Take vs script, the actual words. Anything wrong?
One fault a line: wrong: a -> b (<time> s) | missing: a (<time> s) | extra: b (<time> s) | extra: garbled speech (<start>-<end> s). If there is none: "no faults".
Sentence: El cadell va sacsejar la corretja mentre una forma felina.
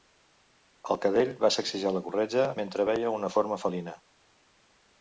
extra: veia (2.9 s)